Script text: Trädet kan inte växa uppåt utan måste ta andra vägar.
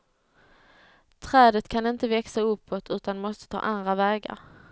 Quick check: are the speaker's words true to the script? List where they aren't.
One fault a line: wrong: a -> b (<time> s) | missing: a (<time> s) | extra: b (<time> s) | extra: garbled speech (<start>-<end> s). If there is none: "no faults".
no faults